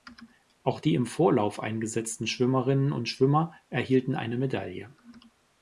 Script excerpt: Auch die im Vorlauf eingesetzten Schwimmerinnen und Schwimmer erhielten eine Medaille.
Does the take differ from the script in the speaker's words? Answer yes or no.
no